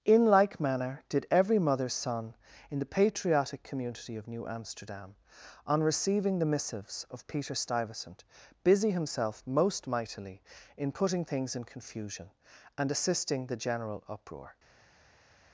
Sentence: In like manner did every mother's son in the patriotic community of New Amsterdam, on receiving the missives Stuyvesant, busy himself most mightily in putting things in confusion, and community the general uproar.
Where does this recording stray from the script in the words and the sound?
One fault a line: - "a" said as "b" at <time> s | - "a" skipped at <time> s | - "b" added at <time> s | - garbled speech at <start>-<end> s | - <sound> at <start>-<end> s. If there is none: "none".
- "of Peter" added at 7.1 s
- "community" said as "assisting" at 12.9 s